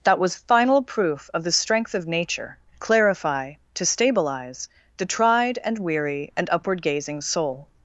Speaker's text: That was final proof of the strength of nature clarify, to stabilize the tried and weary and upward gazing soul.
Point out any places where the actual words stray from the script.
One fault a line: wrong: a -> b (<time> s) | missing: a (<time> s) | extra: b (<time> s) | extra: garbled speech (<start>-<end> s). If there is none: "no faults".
no faults